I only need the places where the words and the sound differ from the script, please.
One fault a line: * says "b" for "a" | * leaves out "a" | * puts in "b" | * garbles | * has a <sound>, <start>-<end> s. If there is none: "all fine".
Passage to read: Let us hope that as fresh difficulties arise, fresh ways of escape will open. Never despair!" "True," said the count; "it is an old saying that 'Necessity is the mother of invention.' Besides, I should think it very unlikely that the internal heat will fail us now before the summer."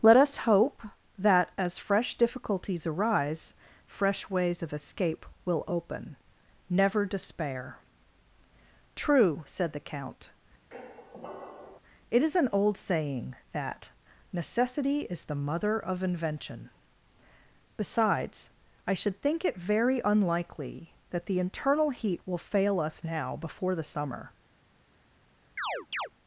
* has a squeak, 10.7-11.8 s
* has a chirp, 25.6-26.1 s